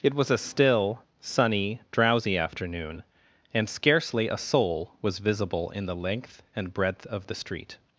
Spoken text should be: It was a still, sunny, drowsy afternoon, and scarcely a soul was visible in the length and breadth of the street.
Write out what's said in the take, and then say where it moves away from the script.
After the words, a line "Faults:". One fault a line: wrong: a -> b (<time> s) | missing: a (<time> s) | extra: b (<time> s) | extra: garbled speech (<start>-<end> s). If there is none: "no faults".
It was a still, sunny, drowsy afternoon, and scarcely a soul was visible in the length and breadth of the street.
Faults:
no faults